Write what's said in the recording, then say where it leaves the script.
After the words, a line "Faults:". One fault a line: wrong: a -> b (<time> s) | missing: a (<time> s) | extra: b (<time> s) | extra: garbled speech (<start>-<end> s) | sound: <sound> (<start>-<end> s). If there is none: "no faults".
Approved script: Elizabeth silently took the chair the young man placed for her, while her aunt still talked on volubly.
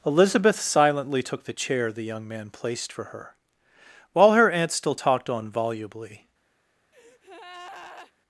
Elizabeth silently took the chair the young man placed for her, while her aunt still talked on volubly.
Faults:
sound: breath (6.9-8.1 s)